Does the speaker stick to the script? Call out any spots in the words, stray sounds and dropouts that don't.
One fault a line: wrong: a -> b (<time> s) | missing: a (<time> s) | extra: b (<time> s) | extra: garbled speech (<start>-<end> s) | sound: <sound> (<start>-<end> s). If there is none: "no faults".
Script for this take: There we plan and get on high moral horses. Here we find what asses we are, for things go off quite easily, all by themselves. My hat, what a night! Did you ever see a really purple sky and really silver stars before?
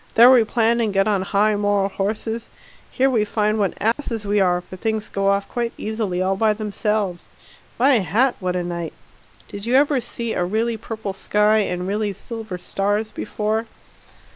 sound: dropout (3.9-4.0 s)